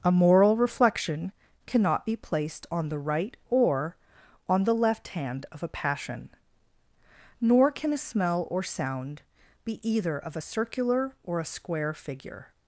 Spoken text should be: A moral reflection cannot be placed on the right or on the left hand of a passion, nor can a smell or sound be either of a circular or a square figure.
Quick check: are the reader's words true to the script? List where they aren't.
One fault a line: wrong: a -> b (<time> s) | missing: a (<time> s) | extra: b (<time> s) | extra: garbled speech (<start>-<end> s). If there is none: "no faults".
no faults